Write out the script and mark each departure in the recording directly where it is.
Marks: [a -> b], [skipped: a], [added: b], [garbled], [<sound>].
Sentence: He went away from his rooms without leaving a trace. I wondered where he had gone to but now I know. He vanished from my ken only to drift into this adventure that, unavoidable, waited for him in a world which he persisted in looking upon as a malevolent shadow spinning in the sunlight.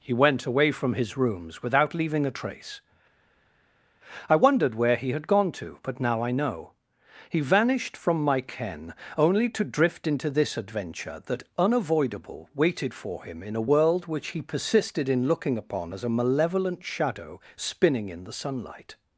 He went away from his rooms without leaving a trace. I wondered where he had gone to but now I know. He vanished from my ken only to drift into this adventure that, unavoidable, waited for him in a world which he persisted in looking upon as a malevolent shadow spinning in the sunlight.